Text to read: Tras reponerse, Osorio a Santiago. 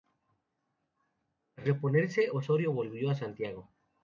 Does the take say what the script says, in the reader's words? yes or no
no